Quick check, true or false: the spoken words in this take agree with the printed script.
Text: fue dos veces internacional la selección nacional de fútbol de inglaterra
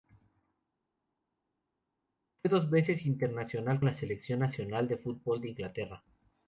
true